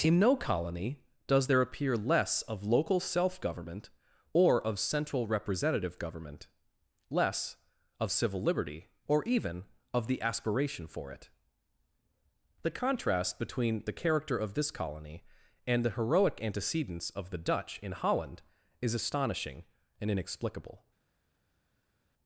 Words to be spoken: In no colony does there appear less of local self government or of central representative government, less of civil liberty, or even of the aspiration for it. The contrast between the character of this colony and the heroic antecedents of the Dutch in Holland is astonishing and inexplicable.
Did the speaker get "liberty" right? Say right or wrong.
right